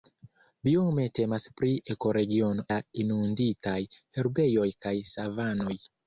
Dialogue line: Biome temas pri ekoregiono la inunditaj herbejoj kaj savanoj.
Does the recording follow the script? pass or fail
pass